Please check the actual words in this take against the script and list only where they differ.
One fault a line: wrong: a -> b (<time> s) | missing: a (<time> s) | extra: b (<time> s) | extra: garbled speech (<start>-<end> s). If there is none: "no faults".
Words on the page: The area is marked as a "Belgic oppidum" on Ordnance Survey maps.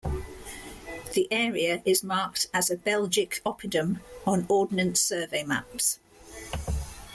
no faults